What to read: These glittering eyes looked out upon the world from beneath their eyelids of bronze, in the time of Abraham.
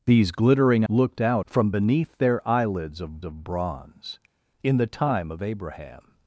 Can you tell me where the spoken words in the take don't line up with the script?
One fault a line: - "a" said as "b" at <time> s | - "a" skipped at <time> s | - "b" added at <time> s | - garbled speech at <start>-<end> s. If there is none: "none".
- "eyes" skipped at 0.8 s
- "upon the world" skipped at 1.5 s
- "of" added at 3.2 s